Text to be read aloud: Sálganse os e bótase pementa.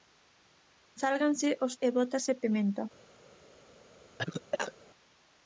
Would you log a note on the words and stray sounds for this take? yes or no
yes